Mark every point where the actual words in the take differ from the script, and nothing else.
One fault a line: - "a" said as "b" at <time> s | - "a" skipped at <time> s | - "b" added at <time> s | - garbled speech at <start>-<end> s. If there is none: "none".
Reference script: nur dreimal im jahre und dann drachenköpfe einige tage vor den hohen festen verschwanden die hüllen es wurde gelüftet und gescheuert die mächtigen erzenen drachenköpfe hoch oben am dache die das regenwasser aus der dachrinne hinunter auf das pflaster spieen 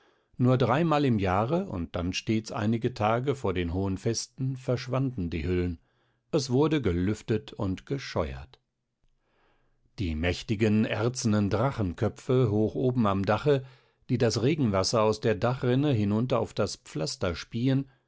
- "drachenköpfe" said as "stets" at 2.1 s